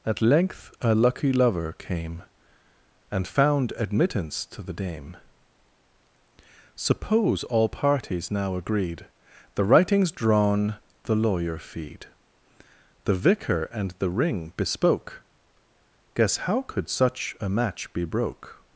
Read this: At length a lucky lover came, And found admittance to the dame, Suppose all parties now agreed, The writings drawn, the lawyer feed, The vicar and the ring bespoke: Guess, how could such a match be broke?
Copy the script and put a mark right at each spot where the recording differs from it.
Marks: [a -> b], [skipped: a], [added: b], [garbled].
At length a lucky lover came, And found admittance to the dame, Suppose all parties now agreed, The writings drawn, the lawyer feed, The vicar and the ring bespoke: Guess, how could such a match be broke?